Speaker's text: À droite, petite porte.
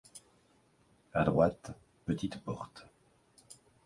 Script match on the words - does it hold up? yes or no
yes